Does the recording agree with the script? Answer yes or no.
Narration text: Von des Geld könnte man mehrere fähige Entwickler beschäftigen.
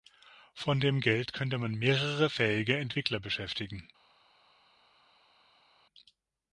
no